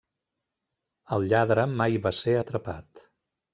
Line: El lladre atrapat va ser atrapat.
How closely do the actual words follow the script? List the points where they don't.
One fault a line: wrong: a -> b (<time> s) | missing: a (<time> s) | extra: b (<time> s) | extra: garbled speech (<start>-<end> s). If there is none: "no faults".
wrong: atrapat -> mai (1.8 s)